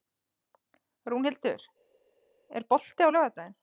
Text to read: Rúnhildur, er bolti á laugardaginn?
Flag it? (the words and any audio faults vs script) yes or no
no